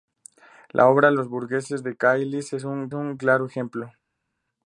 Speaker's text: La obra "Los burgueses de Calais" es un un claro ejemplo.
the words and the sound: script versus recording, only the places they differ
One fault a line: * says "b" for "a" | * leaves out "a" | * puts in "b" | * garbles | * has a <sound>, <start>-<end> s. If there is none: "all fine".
all fine